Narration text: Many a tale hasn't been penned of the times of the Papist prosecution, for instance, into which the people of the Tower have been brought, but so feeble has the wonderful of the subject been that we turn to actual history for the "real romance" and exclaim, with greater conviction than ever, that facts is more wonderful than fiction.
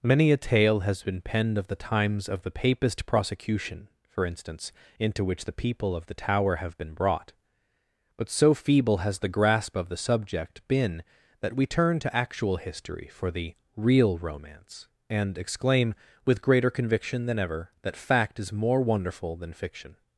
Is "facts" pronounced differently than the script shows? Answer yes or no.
yes